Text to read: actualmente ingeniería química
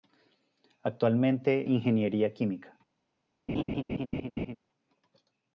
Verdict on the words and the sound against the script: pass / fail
fail